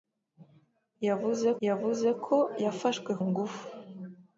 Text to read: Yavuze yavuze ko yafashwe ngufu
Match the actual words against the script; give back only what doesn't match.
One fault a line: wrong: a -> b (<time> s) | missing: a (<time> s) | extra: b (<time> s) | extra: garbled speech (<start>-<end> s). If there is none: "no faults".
no faults